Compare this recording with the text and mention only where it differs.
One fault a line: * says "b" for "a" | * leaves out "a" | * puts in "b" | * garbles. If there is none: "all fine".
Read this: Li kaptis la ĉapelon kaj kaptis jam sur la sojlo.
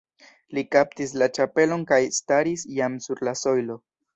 * says "staris" for "kaptis"